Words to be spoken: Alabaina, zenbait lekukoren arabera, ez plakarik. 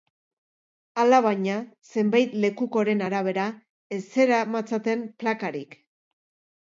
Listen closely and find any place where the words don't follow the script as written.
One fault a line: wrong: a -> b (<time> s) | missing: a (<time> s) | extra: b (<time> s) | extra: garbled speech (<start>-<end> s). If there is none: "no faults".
extra: zeramatzaten (4.1 s)